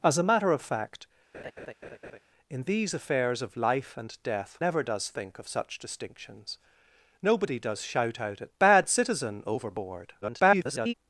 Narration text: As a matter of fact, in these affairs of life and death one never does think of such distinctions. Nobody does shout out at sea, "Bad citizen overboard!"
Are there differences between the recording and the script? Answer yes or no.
yes